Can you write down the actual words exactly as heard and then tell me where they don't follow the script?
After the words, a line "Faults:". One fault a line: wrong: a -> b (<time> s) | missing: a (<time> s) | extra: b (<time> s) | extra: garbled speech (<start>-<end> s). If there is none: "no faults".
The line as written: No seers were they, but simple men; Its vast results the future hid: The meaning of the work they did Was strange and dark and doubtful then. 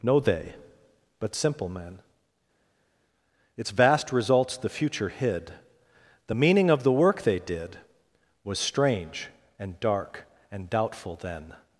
No they, but simple men; Its vast results the future hid: The meaning of the work they did Was strange and dark and doubtful then.
Faults:
missing: seers were (0.2 s)